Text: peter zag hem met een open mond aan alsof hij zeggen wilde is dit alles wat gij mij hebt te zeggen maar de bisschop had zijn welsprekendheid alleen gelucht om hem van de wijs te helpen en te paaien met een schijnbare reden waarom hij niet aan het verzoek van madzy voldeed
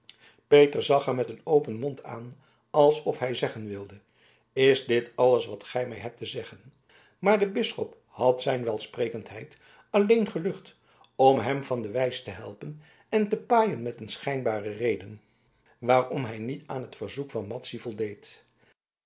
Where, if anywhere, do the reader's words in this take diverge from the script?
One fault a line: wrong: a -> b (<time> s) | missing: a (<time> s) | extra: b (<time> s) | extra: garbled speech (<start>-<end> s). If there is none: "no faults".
no faults